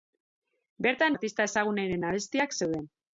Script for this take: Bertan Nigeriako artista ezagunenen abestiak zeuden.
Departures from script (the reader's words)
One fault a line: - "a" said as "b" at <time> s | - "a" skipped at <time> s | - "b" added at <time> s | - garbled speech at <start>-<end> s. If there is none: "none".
- "Nigeriako" skipped at 1.1 s